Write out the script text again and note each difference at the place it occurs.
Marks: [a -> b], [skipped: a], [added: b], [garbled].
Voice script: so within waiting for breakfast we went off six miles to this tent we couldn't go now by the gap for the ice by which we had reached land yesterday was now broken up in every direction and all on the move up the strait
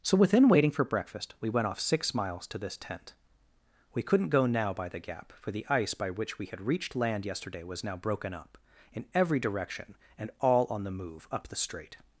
so within waiting for breakfast we went off six miles to this tent we couldn't go now by the gap for the ice by which we had reached land yesterday was now broken up in every direction and all on the move up the strait